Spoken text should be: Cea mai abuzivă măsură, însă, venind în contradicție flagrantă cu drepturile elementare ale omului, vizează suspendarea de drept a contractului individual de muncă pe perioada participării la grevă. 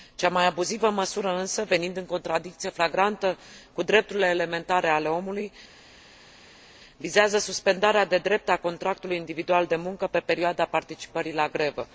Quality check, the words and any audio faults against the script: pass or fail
pass